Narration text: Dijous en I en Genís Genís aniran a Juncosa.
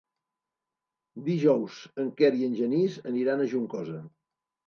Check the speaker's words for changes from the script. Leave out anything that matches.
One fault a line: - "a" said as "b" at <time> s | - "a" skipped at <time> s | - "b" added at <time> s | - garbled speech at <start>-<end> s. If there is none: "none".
- "Quer" added at 2.2 s
- "Genís" skipped at 3.0 s